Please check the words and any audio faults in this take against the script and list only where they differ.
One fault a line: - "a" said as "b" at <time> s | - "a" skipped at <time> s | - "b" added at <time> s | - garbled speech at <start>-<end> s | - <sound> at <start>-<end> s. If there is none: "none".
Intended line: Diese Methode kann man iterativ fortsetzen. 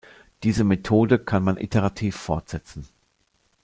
none